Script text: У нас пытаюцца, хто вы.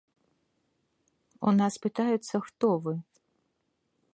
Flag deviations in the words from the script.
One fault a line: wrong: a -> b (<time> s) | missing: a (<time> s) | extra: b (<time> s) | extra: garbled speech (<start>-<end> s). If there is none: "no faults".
no faults